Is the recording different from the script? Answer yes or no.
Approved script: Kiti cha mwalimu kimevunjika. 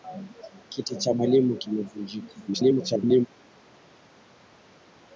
yes